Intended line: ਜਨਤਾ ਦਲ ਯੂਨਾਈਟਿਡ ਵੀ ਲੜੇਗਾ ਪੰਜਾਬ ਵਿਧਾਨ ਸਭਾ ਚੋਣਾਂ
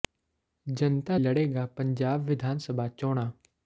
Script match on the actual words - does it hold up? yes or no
no